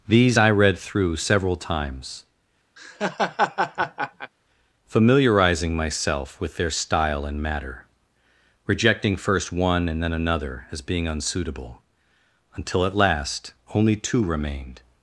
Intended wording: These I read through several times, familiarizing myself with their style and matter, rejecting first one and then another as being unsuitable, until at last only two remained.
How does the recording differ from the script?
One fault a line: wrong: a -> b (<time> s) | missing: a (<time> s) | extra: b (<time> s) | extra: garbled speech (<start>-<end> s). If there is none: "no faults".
no faults